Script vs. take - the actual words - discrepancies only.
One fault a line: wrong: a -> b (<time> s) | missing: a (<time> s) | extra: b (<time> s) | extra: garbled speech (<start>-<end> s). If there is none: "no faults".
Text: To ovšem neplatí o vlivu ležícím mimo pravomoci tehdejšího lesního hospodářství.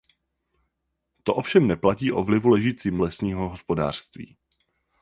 missing: mimo pravomoci tehdejšího (3.0 s)